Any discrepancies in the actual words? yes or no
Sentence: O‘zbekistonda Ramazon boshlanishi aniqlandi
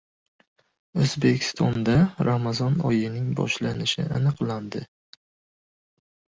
yes